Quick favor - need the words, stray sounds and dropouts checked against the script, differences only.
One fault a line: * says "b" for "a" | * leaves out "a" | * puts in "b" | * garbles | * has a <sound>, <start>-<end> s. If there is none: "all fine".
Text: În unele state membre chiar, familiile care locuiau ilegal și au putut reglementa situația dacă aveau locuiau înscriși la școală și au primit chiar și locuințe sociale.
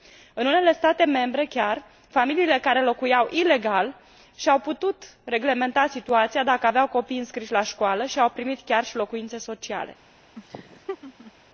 * says "copii" for "locuiau"
* has a laugh, 10.4-11.3 s